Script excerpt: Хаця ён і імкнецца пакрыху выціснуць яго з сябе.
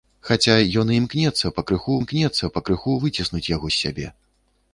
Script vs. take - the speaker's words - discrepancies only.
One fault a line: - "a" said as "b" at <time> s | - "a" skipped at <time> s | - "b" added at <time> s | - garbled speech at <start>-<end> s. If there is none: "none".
- "імкнецца пакрыху" added at 2.0 s